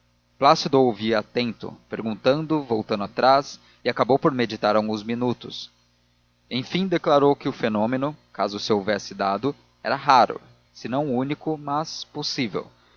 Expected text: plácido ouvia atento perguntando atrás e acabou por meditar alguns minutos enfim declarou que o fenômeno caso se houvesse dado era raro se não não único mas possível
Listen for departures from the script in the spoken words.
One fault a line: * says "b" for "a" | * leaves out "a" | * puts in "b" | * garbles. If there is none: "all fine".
* puts in "voltando"
* leaves out "não"